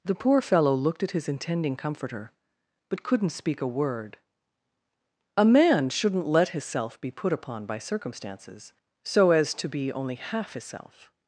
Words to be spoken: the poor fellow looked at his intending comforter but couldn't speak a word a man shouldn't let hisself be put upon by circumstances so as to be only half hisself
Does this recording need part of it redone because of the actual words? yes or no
no